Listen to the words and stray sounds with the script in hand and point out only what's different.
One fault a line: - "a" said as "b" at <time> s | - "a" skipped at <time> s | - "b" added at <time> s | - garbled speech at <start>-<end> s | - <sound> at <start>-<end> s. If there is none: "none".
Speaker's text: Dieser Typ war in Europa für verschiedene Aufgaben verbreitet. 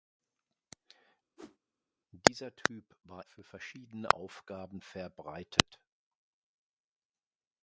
- whoosh at 1.4-1.6 s
- "in Europa" skipped at 3.2 s